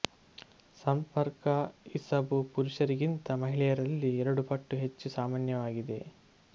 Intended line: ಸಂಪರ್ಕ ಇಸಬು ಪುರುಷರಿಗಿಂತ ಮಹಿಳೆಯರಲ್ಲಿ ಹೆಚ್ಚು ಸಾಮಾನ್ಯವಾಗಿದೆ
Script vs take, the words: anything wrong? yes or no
yes